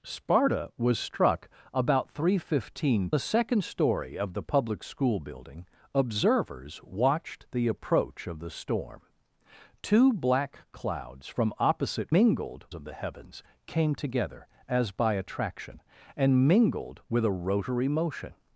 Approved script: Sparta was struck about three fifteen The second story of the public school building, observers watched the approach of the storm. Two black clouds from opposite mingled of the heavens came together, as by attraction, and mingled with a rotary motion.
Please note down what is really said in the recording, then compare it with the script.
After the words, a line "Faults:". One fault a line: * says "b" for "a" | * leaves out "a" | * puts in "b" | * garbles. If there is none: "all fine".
Sparta was struck about three fifteen The second story of the public school building, observers watched the approach of the storm. Two black clouds from opposite mingled of the heavens came together, as by attraction, and mingled with a rotary motion.
Faults:
all fine